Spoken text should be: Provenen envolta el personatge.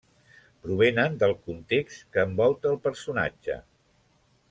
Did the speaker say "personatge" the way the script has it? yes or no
yes